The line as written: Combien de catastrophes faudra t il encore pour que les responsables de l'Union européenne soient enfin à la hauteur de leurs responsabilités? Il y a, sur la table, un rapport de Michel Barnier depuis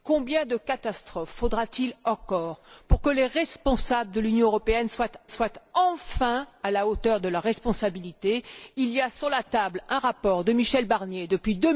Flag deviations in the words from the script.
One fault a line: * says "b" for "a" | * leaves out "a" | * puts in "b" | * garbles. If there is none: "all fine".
* puts in "soient"